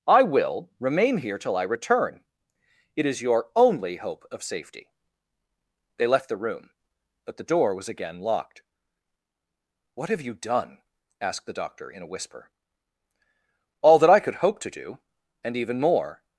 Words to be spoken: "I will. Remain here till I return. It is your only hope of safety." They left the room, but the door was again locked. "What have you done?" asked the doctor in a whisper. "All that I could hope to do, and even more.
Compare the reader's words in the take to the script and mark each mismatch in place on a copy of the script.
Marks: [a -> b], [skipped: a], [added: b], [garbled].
"I will. Remain here till I return. It is your only hope of safety." They left the room, but the door was again locked. "What have you done?" asked the doctor in a whisper. "All that I could hope to do, and even more.